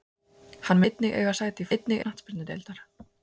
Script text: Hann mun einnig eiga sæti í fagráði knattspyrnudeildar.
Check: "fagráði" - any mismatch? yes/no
yes